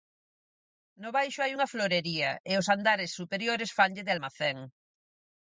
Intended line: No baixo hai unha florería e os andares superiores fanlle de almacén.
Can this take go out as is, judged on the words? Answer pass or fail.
pass